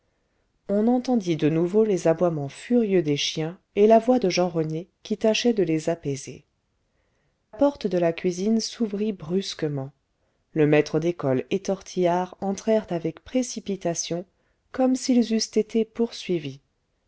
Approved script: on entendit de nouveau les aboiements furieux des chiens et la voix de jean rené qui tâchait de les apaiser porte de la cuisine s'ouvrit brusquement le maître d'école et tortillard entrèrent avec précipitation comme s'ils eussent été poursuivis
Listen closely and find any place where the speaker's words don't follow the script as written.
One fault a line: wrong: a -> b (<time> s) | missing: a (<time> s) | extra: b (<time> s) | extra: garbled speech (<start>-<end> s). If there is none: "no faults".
no faults